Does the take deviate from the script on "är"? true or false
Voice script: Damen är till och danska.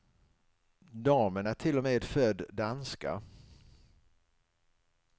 false